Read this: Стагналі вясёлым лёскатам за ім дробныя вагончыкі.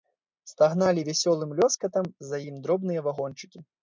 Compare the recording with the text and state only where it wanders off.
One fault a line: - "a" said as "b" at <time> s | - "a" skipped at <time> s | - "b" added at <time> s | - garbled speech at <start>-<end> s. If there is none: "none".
none